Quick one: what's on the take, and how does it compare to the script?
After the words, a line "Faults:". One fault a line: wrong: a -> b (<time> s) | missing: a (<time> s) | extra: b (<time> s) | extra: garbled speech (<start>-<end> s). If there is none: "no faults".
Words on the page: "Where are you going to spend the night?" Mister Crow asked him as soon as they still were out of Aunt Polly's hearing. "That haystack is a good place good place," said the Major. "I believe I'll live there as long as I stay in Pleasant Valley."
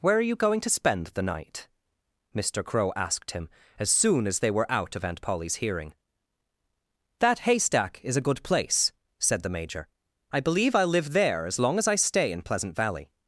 "Where are you going to spend the night?" Mister Crow asked him as soon as they were out of Aunt Polly's hearing. "That haystack is a good place," said the Major. "I believe I'll live there as long as I stay in Pleasant Valley."
Faults:
missing: still (4.5 s)
missing: good place (8.9 s)